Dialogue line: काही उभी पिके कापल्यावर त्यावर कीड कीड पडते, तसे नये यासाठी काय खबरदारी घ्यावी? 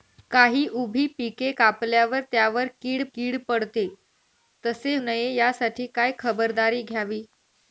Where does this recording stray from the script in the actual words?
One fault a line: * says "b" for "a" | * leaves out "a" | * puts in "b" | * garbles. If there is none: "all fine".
all fine